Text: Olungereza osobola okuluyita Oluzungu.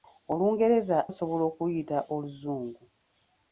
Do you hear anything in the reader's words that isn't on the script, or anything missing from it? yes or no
no